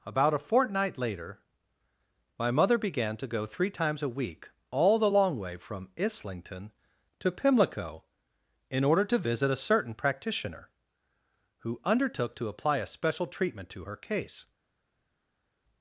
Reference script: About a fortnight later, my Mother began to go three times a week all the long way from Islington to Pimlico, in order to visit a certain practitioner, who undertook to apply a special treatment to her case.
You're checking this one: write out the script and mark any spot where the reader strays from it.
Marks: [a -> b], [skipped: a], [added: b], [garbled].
About a fortnight later, my Mother began to go three times a week all the long way from Islington to Pimlico, in order to visit a certain practitioner, who undertook to apply a special treatment to her case.